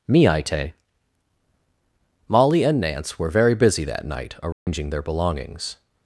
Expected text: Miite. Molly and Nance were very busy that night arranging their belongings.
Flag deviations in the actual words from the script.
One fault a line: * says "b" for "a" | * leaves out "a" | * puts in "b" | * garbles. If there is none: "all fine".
all fine